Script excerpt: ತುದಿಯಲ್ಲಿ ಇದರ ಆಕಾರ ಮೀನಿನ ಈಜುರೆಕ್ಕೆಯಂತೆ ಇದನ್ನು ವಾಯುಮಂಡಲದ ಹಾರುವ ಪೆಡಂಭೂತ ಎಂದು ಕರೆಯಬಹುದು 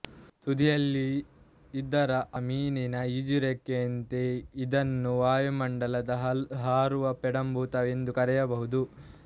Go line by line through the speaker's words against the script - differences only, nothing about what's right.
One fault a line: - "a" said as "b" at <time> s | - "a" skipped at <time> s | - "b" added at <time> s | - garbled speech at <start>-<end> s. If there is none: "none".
- "ಆಕಾರ" skipped at 2.1 s